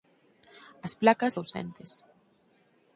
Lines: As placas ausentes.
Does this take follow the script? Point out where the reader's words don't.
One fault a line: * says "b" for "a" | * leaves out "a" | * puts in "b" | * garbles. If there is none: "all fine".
all fine